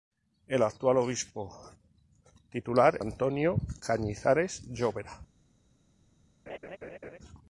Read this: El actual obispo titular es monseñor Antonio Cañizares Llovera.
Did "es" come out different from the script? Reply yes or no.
yes